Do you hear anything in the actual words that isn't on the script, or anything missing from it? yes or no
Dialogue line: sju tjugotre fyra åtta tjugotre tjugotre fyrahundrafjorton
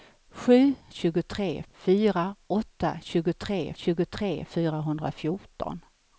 no